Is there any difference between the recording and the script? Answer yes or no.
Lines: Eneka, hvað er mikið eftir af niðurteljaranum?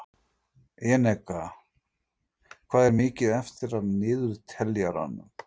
no